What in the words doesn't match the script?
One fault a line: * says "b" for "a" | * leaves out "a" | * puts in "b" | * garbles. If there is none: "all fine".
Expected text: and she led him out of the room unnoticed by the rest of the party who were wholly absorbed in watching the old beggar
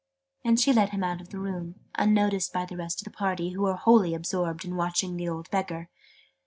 all fine